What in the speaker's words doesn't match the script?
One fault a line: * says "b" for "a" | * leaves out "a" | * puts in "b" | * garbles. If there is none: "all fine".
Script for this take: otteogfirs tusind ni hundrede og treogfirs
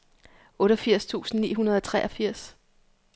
all fine